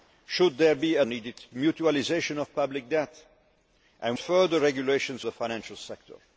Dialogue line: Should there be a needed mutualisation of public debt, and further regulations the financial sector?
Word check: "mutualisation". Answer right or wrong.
right